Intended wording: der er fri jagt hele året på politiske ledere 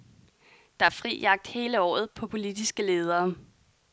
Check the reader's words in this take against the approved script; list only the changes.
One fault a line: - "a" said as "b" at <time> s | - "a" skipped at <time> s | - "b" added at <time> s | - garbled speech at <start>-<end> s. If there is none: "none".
none